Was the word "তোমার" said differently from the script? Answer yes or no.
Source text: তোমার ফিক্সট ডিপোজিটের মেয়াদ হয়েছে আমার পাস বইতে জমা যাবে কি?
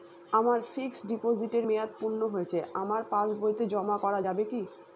yes